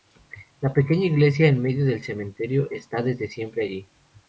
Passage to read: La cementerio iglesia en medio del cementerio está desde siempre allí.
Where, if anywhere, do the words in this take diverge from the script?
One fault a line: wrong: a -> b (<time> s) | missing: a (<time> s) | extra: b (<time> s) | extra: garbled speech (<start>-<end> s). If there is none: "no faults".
wrong: cementerio -> pequeña (0.7 s)